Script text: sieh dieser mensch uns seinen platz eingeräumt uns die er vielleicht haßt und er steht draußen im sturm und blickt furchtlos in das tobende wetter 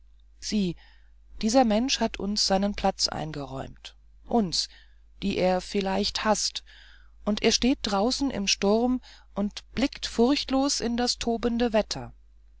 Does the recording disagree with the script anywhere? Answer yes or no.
yes